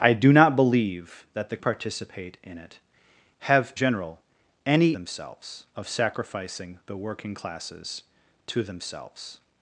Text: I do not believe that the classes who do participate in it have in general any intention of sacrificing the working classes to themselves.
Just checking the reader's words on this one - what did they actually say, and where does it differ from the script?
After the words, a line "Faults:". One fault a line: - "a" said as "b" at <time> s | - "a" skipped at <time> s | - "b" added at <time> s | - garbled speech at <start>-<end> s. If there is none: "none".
I do not believe that the participate in it have general any themselves of sacrificing the working classes to themselves.
Faults:
- "classes who do" skipped at 1.6 s
- "in" skipped at 3.7 s
- "intention" said as "themselves" at 4.9 s